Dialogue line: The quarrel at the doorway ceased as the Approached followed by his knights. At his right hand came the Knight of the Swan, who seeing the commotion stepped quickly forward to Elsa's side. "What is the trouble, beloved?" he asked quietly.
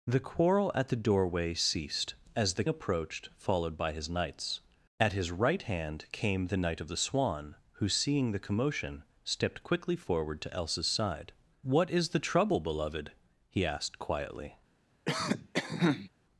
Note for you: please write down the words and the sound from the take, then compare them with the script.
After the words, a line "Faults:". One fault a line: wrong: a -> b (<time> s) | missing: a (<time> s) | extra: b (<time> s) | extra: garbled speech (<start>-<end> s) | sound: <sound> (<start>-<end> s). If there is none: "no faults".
The quarrel at the doorway ceased as the Approached followed by his knights. At his right hand came the Knight of the Swan, who seeing the commotion stepped quickly forward to Elsa's side. "What is the trouble, beloved?" he asked quietly.
Faults:
sound: cough (15.1-16.1 s)